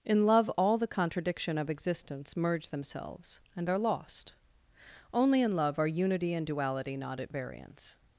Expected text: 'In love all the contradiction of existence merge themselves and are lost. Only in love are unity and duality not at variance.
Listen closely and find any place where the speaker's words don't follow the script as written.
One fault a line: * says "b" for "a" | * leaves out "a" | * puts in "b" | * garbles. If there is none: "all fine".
all fine